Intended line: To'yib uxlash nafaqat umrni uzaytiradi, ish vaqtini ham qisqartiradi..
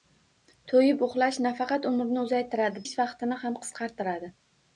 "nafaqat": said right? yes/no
yes